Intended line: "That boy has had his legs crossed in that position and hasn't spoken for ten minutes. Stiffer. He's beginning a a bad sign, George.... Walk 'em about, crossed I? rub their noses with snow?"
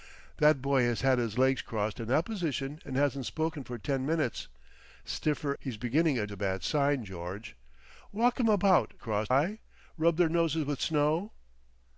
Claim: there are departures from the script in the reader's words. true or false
false